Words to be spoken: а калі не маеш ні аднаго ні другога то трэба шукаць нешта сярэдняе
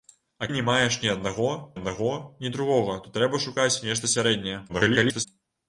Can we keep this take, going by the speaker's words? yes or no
no